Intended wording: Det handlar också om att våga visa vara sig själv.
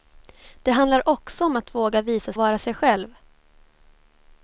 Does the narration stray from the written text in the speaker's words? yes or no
no